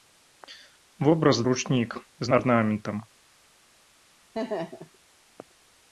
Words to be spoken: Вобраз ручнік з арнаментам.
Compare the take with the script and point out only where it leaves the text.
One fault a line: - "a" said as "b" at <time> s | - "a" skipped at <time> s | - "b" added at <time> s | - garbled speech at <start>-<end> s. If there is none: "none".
none